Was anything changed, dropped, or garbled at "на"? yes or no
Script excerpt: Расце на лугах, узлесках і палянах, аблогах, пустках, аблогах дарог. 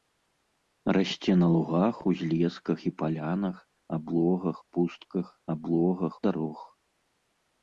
no